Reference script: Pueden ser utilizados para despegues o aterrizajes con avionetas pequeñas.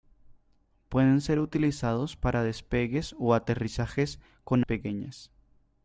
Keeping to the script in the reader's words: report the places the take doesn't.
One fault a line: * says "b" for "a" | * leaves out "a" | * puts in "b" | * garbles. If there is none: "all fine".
* leaves out "avionetas"